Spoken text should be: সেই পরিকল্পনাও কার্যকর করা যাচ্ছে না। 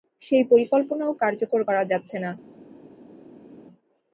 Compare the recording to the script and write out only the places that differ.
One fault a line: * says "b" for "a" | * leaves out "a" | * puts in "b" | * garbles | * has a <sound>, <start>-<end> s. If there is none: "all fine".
all fine